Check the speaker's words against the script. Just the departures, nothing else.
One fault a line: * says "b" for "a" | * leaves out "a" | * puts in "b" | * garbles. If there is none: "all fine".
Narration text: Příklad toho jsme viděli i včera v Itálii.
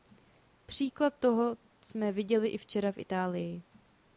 all fine